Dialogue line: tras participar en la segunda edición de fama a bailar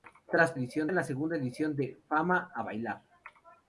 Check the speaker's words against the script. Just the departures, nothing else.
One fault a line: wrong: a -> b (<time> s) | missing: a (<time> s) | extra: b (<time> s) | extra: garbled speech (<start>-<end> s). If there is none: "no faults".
wrong: participar -> edición (0.5 s)